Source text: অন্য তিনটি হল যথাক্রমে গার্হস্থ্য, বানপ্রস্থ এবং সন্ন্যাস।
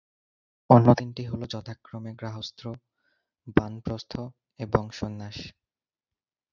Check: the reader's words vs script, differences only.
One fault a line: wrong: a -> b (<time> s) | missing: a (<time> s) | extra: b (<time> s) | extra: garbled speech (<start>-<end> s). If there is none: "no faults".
no faults